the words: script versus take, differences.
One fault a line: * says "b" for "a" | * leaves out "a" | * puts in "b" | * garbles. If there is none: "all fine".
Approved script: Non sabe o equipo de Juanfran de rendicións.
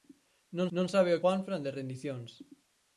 * puts in "non"
* leaves out "equipo de"